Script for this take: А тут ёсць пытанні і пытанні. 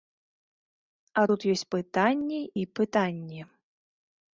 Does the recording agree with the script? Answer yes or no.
yes